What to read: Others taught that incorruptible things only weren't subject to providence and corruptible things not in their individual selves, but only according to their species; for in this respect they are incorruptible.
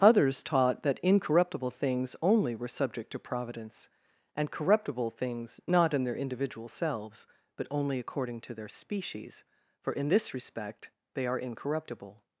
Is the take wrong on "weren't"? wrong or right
wrong